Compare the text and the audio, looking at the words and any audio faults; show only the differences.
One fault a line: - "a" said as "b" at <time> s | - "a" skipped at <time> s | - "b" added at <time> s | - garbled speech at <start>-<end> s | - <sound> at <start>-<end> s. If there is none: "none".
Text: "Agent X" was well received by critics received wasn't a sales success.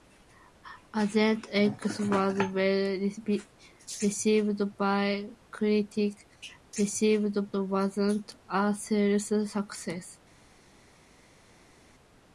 none